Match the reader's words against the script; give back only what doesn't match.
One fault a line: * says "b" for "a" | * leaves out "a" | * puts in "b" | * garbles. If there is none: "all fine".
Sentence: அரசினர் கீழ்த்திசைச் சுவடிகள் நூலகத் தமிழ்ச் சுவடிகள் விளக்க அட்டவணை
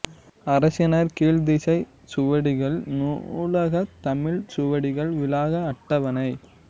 all fine